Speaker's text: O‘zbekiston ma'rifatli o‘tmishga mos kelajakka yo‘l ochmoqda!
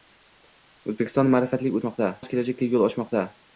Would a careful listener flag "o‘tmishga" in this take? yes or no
yes